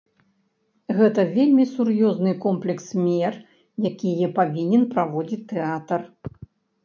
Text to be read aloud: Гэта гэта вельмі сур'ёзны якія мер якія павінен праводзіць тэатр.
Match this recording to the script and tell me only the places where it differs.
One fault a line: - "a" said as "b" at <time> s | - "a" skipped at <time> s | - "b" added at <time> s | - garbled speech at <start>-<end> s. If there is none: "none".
- "гэта" skipped at 1.2 s
- "якія" said as "комплекс" at 2.5 s